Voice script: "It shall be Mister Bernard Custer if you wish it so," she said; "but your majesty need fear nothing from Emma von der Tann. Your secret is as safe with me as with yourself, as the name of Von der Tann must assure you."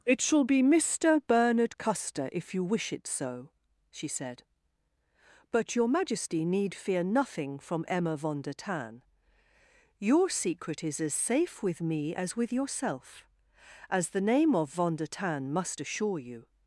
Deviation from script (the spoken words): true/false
false